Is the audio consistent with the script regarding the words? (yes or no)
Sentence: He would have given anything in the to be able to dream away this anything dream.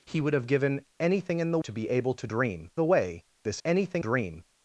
yes